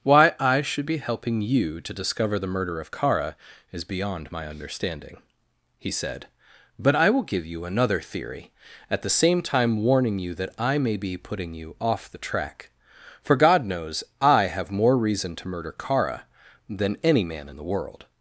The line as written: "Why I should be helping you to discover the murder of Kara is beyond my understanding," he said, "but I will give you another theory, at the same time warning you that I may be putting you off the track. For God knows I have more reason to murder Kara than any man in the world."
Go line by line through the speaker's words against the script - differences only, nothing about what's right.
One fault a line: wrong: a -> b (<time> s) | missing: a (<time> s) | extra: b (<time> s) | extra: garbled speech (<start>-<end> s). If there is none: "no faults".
no faults